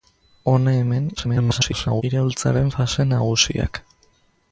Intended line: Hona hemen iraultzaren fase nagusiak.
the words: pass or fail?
fail